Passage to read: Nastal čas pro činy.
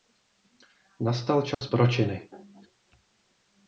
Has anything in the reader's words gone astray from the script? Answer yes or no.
no